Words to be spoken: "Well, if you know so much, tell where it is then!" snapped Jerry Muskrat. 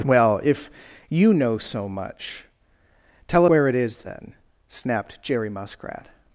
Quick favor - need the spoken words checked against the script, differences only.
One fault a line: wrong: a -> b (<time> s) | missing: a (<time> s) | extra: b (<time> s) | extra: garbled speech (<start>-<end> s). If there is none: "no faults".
no faults